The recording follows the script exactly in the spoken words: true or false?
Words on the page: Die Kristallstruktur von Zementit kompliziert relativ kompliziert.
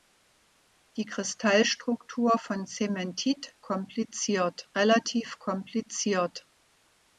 true